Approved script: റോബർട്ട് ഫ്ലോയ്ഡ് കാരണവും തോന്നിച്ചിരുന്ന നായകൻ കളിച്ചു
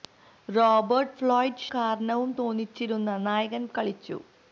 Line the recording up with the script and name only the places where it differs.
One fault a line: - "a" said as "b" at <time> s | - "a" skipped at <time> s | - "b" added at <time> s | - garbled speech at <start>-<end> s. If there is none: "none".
none